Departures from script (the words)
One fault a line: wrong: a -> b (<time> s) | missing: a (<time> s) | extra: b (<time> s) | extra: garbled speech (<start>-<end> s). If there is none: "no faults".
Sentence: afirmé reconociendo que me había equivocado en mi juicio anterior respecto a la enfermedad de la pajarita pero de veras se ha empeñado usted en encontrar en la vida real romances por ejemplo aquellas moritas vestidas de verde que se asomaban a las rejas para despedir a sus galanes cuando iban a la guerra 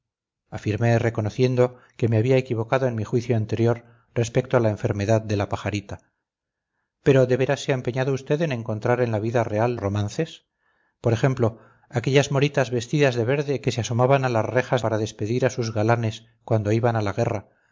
no faults